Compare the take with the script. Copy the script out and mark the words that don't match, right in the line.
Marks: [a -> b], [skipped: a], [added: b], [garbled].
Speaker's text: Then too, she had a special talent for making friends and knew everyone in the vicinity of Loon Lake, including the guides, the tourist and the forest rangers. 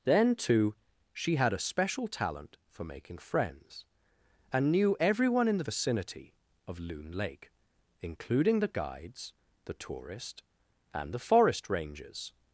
Then too, she had a special talent for making friends and knew everyone in the vicinity of Loon Lake, including the guides, the tourist and the forest rangers.